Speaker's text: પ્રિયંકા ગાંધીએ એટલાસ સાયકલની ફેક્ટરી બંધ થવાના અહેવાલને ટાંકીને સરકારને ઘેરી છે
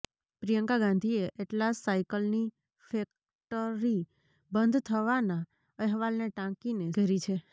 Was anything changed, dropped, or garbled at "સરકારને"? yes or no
yes